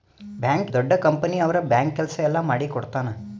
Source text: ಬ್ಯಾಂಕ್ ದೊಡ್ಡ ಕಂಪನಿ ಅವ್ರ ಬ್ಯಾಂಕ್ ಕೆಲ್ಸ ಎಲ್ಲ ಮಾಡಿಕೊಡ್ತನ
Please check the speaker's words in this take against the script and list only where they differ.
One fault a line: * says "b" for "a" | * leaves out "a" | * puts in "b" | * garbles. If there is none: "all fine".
all fine